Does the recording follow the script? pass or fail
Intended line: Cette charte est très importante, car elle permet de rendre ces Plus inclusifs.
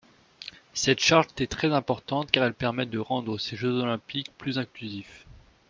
fail